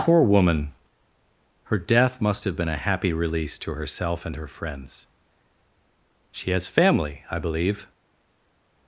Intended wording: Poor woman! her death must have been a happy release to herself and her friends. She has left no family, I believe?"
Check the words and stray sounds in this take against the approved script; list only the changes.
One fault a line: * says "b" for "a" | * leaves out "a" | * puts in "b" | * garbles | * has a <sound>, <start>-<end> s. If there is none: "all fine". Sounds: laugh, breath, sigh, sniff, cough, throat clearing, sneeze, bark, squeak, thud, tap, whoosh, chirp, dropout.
* leaves out "left no"